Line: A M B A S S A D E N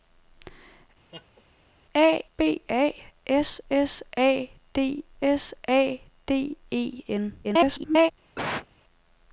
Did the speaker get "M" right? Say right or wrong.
wrong